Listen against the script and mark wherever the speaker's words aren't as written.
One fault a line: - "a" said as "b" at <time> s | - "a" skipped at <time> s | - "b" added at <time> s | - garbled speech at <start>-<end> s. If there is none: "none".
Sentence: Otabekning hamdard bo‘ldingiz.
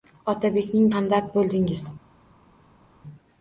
none